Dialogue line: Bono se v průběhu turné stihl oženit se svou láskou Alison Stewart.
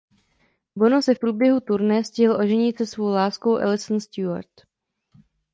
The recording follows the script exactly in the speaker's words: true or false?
true